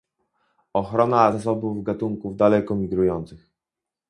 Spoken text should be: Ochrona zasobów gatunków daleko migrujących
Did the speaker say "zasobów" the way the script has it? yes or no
yes